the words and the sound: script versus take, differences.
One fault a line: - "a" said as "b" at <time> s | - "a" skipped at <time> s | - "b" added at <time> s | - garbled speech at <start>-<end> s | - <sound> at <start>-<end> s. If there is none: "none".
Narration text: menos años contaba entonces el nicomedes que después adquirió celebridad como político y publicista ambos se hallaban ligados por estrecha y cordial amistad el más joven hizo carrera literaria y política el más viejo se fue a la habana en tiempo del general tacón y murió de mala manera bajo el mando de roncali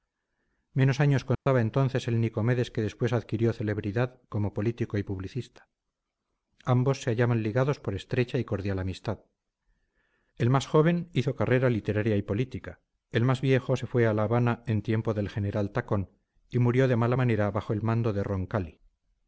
- dropout at 1.3-1.5 s